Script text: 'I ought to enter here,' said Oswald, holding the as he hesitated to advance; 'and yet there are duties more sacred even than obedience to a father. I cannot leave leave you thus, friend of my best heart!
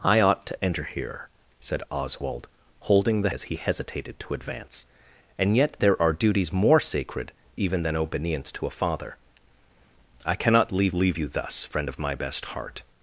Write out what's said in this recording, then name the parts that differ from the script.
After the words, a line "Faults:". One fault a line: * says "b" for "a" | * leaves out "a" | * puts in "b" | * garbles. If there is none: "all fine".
'I ought to enter here,' said Oswald, holding the as he hesitated to advance; 'and yet there are duties more sacred even than obedience to a father. I cannot leave leave you thus, friend of my best heart!
Faults:
all fine